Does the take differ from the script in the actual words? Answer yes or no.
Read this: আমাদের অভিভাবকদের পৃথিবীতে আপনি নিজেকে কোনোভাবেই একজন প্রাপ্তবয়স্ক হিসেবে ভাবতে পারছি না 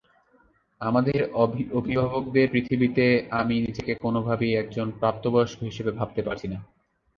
yes